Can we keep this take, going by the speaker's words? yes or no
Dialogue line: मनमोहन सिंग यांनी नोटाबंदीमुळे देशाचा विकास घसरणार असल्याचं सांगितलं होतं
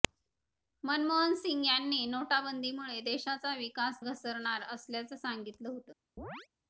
yes